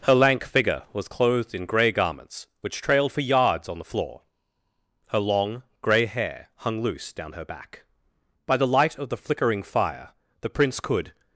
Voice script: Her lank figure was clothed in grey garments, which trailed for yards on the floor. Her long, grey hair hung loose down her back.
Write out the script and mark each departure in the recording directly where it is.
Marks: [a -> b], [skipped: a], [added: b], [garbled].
Her lank figure was clothed in grey garments, which trailed for yards on the floor. Her long, grey hair hung loose down her back. [added: By the light of the flickering fire the Prince could]